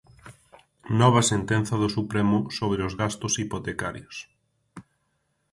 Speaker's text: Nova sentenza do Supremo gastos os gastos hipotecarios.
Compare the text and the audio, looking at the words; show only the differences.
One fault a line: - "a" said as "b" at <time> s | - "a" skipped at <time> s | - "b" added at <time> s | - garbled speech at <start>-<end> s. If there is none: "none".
- "gastos" said as "sobre" at 2.6 s